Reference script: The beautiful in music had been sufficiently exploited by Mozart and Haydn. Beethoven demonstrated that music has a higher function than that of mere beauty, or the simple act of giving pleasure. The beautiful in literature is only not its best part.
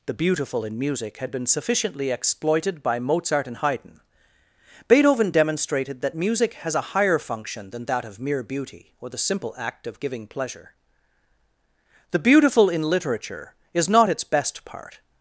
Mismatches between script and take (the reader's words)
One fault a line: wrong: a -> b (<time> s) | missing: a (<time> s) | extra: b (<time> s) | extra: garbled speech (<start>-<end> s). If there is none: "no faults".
missing: only (13.9 s)